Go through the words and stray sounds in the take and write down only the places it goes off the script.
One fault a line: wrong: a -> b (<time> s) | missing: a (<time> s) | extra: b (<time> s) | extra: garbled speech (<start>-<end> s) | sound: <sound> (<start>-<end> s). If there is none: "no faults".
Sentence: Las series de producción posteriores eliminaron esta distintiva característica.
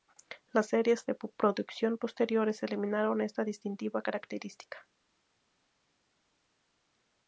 no faults